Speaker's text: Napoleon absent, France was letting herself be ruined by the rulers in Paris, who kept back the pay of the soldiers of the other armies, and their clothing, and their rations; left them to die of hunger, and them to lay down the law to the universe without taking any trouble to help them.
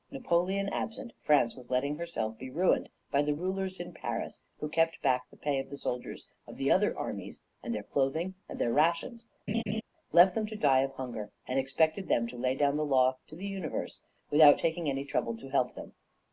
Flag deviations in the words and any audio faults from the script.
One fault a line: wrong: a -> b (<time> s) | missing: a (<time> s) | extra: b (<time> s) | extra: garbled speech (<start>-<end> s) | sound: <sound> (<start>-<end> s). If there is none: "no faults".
sound: laugh (9.5-9.8 s)
extra: expected (11.6 s)